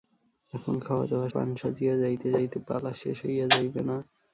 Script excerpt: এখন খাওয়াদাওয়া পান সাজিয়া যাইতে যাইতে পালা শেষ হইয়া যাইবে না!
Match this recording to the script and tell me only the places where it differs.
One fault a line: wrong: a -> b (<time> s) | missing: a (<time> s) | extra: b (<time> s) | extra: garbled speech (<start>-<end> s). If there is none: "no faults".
no faults